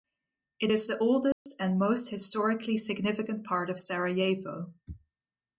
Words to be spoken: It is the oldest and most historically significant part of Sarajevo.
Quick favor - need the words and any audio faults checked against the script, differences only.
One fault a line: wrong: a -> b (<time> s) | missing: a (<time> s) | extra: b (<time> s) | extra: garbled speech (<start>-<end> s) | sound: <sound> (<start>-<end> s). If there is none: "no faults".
sound: dropout (1.3-1.5 s)